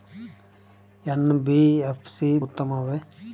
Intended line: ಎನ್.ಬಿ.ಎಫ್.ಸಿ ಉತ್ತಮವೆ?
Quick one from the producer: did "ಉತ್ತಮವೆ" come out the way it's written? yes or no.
yes